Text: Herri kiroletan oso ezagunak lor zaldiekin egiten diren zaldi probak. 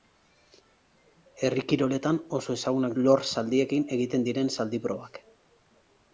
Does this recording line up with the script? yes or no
yes